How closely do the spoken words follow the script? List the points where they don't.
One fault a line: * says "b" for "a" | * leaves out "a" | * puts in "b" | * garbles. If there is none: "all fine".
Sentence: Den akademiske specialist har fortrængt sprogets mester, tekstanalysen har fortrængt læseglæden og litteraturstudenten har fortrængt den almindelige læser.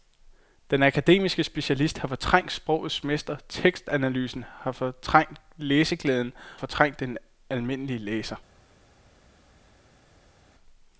* leaves out "og litteraturstudenten har"